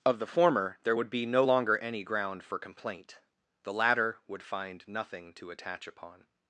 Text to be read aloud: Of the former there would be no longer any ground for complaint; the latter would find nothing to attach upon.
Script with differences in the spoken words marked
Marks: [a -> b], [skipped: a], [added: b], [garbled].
Of the former there would be no longer any ground for complaint; the latter would find nothing to attach upon.